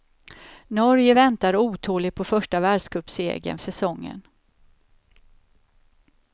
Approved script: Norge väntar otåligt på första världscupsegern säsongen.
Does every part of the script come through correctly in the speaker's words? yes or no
yes